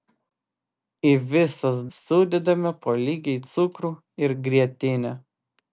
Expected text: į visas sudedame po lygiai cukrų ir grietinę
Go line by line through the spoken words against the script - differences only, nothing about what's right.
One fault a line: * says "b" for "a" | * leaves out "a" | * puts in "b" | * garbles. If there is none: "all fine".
all fine